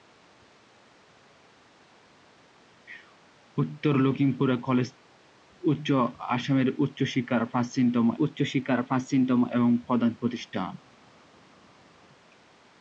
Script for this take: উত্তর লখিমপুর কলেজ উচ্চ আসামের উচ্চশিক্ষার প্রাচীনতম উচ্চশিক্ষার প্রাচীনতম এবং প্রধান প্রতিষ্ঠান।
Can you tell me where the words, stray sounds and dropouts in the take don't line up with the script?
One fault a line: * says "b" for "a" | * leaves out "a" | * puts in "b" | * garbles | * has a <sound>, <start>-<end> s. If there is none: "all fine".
all fine